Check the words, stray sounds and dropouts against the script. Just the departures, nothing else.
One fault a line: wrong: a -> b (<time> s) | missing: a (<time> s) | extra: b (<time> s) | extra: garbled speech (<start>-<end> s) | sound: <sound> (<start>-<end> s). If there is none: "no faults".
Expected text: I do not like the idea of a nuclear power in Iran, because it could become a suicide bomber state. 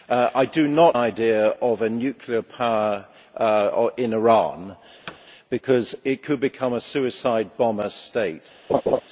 missing: like the (1.0 s)
sound: thud (5.1-5.2 s)
sound: laugh (8.7-9.0 s)